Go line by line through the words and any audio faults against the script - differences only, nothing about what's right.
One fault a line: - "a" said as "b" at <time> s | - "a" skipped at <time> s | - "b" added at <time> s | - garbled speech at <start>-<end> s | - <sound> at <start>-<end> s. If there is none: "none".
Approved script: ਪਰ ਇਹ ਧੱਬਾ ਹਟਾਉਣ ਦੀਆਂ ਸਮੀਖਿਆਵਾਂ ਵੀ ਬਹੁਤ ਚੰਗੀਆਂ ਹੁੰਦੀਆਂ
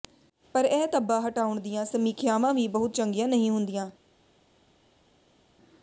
- "ਨਹੀਂ" added at 3.3 s